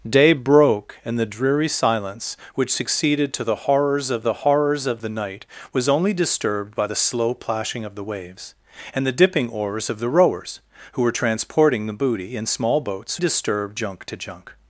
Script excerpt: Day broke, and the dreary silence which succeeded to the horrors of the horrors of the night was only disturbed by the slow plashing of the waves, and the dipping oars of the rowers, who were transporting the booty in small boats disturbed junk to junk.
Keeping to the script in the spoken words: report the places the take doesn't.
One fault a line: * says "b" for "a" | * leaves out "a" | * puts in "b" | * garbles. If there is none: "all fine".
all fine